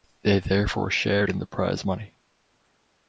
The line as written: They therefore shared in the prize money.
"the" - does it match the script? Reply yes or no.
yes